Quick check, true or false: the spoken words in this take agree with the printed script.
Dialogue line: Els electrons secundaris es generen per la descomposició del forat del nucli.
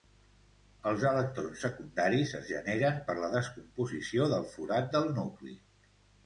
true